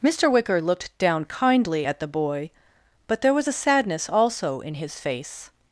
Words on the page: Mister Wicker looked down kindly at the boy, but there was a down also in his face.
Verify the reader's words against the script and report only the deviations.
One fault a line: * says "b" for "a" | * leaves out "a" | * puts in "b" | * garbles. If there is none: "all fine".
* says "sadness" for "down"